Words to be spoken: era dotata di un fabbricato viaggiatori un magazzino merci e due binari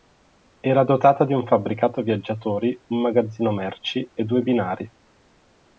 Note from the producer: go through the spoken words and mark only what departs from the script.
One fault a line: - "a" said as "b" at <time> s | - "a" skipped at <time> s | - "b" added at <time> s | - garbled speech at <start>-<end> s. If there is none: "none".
none